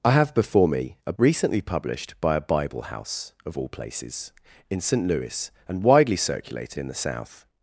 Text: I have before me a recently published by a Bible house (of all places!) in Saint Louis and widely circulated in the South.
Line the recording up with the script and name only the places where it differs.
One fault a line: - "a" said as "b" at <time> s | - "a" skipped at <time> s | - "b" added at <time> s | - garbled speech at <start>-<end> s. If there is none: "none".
none